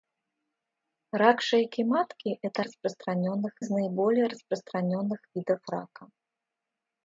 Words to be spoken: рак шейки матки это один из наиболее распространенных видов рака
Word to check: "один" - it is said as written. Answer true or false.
false